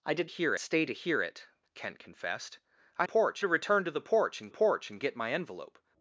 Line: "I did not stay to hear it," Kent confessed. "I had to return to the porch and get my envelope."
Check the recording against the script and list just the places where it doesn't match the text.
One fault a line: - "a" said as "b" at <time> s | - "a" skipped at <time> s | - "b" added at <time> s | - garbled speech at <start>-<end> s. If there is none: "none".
- "not" said as "hear" at 0.2 s
- "had" said as "porch" at 3.0 s
- "porch and" added at 4.5 s